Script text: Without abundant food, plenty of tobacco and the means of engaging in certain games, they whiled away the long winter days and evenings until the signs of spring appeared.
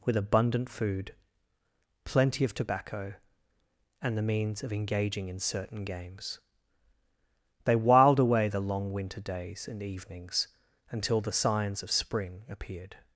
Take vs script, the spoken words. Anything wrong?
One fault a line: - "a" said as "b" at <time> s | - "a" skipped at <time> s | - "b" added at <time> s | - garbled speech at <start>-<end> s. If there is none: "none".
- "Without" said as "With" at 0.0 s